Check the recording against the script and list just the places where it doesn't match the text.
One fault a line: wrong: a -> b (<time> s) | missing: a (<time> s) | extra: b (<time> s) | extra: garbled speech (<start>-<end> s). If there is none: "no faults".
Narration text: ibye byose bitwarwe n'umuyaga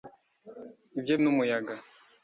missing: byose bitwarwe (1.1 s)